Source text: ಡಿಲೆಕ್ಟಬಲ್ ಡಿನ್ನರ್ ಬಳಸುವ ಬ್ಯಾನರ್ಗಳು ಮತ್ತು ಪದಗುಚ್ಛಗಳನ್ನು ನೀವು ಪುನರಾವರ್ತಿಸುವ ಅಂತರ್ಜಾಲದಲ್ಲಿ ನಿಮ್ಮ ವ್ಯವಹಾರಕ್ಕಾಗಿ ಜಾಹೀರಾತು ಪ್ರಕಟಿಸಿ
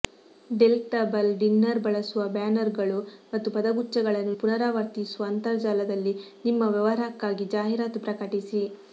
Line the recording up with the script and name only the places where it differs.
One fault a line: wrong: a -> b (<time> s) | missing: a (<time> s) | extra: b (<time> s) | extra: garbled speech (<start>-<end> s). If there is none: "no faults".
missing: ನೀವು (4.3 s)